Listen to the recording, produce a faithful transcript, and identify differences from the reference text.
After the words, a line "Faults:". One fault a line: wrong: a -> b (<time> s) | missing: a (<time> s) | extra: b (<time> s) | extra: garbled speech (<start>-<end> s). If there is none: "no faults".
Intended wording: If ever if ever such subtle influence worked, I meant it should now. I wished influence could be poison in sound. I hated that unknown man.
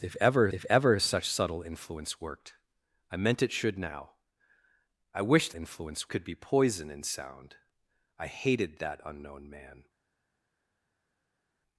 If ever if ever such subtle influence worked, I meant it should now. I wished influence could be poison in sound. I hated that unknown man.
Faults:
no faults